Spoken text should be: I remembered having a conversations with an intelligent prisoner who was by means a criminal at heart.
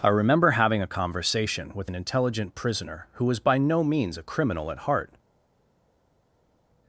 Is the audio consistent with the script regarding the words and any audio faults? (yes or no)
no